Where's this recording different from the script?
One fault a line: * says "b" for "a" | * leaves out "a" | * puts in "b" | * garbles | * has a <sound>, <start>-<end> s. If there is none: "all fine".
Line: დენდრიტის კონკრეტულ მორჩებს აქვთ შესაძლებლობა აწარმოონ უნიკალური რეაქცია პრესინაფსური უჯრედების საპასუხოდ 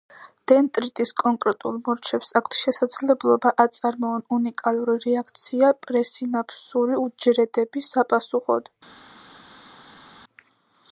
all fine